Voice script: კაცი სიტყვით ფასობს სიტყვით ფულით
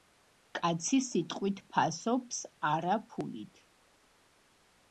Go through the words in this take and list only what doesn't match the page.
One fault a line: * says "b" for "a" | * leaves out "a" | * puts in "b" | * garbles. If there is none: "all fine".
* says "არა" for "სიტყვით"